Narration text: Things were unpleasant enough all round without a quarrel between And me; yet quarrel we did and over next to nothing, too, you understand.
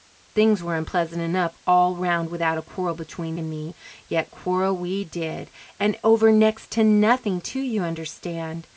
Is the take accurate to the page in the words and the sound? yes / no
yes